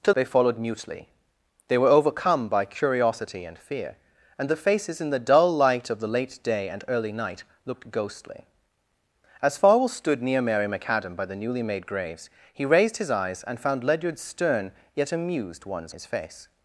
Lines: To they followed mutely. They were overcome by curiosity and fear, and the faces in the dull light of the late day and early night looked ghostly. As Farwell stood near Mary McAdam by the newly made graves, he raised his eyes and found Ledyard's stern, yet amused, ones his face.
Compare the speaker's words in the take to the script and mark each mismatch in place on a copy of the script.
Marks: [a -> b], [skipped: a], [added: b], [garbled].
To they followed mutely. They were overcome by curiosity and fear, and the faces in the dull light of the late day and early night looked ghostly. As Farwell stood near Mary McAdam by the newly made graves, he raised his eyes and found Ledyard's stern, yet amused, ones his face.